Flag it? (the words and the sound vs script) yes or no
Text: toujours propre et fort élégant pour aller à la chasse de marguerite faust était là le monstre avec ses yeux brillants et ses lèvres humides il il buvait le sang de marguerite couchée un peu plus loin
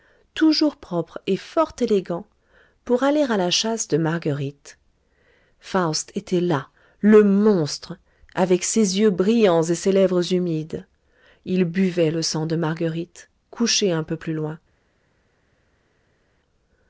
yes